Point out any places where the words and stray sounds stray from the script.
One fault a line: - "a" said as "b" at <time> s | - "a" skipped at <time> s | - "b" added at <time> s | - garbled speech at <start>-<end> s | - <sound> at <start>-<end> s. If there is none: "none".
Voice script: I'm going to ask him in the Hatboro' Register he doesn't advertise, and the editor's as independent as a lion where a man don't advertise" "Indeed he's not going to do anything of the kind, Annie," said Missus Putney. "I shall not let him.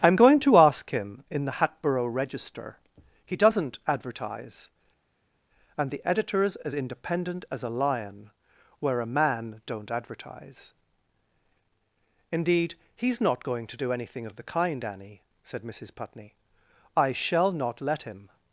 none